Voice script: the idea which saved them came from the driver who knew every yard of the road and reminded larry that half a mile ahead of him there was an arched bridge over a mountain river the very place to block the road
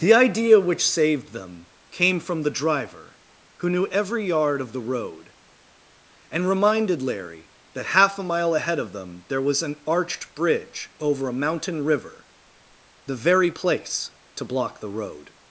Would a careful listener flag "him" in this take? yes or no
yes